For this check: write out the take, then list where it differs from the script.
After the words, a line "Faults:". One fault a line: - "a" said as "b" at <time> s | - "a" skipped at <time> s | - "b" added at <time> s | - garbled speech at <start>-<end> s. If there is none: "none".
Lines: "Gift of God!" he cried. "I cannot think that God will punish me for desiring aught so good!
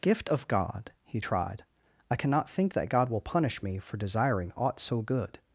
"Gift of God!" he tried. "I cannot think that God will punish me for desiring aught so good!
Faults:
- "cried" said as "tried" at 1.2 s